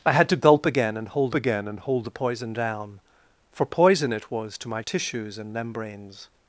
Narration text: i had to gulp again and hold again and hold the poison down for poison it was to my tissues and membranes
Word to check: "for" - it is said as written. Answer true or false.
true